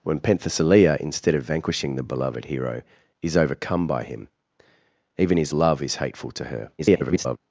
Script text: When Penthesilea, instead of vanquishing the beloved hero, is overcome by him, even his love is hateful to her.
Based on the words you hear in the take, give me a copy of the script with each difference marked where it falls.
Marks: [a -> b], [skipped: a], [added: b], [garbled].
When Penthesilea, instead of vanquishing the beloved hero, is overcome by him, even his love is hateful to her. [garbled]